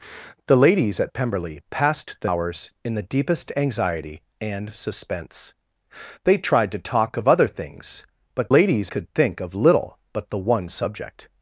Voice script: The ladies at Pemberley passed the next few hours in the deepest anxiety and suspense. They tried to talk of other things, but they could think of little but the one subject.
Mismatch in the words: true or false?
true